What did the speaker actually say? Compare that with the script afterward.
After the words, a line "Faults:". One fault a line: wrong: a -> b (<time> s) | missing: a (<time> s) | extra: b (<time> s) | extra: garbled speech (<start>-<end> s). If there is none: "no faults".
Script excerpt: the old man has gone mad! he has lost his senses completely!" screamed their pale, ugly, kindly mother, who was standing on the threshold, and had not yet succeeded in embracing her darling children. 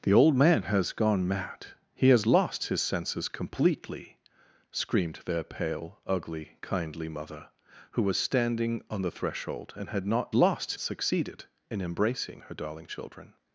the old man has gone mad! he has lost his senses completely!" screamed their pale, ugly, kindly mother, who was standing on the threshold, and had not lost succeeded in embracing her darling children.
Faults:
wrong: yet -> lost (10.3 s)